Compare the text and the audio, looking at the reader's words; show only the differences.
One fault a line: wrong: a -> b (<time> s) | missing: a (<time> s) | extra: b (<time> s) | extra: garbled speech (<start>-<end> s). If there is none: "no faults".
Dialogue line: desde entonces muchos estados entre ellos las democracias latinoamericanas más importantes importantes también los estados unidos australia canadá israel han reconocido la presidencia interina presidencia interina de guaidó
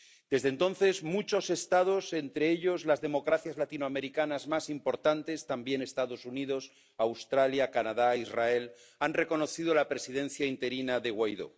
missing: importantes (5.5 s)
missing: presidencia interina (11.0 s)